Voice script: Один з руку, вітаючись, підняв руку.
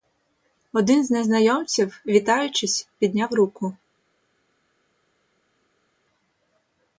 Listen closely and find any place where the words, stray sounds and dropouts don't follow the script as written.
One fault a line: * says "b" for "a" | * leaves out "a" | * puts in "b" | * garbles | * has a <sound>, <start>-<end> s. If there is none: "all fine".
* says "незнайомців" for "руку"